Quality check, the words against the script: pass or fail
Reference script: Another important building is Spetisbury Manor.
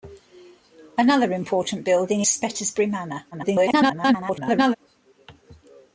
fail